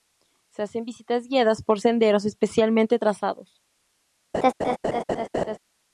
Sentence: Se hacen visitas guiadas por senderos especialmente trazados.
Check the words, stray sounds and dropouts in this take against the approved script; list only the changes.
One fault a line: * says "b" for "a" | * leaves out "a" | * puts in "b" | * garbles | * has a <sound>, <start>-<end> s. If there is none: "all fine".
* has a laugh, 4.3-5.6 s